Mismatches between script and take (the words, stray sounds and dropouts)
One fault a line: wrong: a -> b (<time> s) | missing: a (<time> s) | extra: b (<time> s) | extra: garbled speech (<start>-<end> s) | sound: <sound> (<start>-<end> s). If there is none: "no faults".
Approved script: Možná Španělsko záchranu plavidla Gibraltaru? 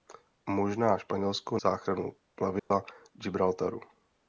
sound: dropout (2.6-2.7 s)